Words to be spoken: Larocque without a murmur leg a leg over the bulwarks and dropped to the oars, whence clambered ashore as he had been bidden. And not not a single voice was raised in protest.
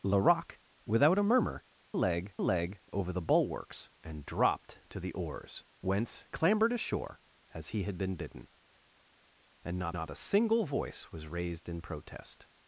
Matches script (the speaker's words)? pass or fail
pass